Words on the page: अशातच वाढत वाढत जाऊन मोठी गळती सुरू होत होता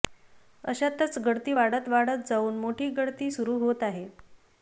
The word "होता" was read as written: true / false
false